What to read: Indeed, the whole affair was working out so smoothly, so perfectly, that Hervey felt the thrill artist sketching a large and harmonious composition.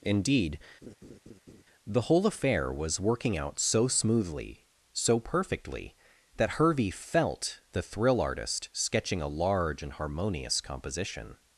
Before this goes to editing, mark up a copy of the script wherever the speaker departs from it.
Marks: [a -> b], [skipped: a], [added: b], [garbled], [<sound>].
Indeed, [laugh] the whole affair was working out so smoothly, so perfectly, that Hervey felt the thrill artist sketching a large and harmonious composition.